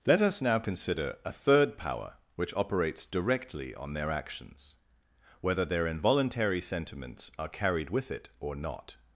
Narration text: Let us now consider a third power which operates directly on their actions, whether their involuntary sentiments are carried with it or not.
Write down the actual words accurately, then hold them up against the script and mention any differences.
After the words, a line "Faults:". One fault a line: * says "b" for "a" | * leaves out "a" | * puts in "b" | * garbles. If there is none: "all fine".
Let us now consider a third power which operates directly on their actions, whether their involuntary sentiments are carried with it or not.
Faults:
all fine